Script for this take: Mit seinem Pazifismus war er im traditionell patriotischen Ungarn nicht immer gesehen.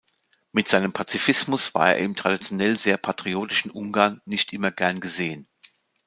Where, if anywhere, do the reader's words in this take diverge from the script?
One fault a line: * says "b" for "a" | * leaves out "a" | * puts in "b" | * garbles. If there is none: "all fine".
* puts in "sehr"
* puts in "gern"